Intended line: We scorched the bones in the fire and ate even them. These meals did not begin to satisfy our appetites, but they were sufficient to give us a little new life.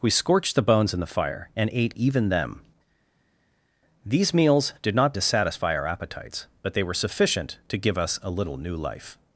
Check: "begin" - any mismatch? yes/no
yes